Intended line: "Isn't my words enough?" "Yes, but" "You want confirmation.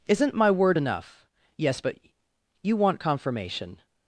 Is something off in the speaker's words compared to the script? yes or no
yes